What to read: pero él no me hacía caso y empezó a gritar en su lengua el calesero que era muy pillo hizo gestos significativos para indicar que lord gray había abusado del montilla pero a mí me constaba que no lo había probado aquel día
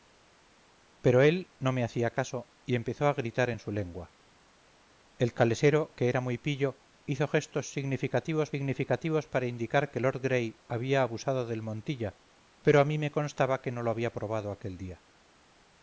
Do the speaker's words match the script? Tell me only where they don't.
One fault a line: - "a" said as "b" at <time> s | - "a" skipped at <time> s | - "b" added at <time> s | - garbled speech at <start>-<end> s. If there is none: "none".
- "significativos" added at 8.5 s